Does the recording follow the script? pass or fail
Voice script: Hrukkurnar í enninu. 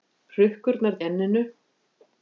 pass